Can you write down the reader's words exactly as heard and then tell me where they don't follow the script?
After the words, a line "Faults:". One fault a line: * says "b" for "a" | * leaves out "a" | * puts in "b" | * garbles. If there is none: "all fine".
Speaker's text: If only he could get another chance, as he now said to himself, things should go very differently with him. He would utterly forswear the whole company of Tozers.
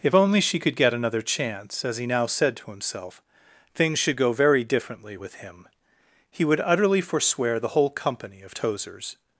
If only she could get another chance, as he now said to himself, things should go very differently with him. He would utterly forswear the whole company of Tozers.
Faults:
* says "she" for "he"